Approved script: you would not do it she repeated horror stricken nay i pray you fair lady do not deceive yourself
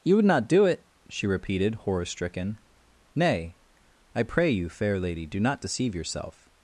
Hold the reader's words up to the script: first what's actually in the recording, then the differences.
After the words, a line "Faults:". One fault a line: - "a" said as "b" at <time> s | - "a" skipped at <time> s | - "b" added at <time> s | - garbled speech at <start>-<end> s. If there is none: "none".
you would not do it she repeated horror stricken nay i pray you fair lady do not deceive yourself
Faults:
none